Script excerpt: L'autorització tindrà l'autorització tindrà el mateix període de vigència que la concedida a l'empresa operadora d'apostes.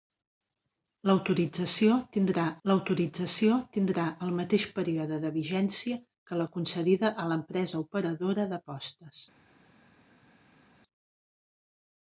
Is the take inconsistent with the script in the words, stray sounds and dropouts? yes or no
no